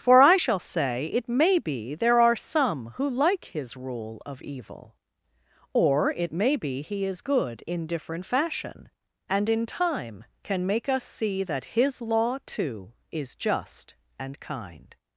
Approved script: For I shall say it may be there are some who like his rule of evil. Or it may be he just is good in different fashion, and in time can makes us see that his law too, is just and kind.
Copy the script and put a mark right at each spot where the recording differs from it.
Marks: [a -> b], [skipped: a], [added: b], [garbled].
For I shall say it may be there are some who like his rule of evil. Or it may be he [skipped: just] is good in different fashion, and in time can [makes -> make] us see that his law too, is just and kind.